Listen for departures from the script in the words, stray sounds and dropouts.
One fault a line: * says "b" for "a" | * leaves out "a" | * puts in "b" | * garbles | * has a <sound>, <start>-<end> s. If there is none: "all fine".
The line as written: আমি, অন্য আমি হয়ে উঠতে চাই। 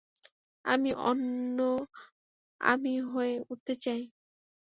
all fine